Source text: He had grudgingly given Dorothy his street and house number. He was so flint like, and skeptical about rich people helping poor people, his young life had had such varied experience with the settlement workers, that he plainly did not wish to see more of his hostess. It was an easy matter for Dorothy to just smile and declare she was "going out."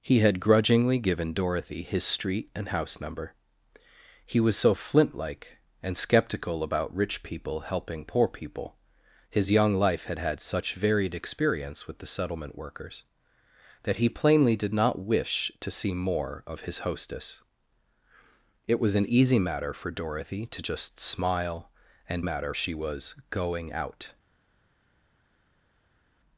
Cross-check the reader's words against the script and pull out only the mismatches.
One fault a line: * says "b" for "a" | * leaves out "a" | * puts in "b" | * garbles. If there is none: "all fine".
* says "matter" for "declare"